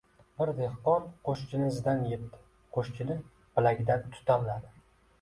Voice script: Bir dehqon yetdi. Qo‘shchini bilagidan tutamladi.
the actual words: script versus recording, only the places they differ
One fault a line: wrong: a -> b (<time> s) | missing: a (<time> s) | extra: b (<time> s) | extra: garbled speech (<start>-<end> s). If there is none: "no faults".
extra: qo‘shchini izidan (1.3 s)